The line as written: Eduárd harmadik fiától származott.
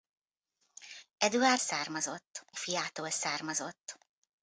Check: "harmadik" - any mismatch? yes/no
yes